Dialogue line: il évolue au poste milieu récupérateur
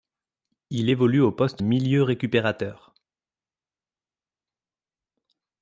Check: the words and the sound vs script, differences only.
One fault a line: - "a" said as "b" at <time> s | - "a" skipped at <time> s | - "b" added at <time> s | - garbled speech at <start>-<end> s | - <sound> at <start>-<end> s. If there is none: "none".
none